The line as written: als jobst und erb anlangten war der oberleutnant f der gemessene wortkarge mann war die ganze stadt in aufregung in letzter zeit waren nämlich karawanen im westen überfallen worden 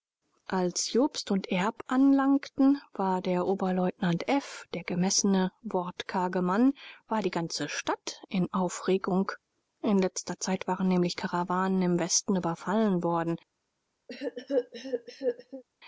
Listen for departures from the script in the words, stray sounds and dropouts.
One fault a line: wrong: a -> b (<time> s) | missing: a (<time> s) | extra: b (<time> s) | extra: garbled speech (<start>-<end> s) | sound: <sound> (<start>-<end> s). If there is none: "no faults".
sound: cough (14.1-15.6 s)